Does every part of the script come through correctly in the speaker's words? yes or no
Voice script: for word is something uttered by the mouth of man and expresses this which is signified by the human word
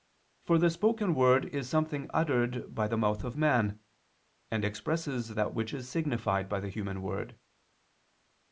no